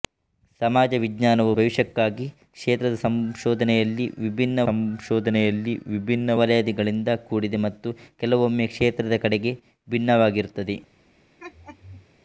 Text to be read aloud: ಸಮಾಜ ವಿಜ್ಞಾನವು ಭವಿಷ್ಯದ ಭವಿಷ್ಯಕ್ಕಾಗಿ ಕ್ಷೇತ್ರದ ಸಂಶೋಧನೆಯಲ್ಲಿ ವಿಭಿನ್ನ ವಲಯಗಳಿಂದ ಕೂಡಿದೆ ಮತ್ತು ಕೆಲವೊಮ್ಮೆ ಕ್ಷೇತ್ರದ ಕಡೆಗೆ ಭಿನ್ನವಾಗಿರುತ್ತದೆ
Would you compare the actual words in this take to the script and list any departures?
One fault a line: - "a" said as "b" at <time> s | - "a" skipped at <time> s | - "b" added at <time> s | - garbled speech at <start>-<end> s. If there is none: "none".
- "ಭವಿಷ್ಯದ" skipped at 1.5 s
- "ಸಂಶೋಧನೆಯಲ್ಲಿ ವಿಭಿನ್ನ" added at 4.7 s